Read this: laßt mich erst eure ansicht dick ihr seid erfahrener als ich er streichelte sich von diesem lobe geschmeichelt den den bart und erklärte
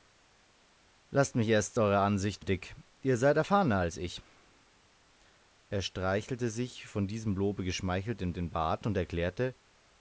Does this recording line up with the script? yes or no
yes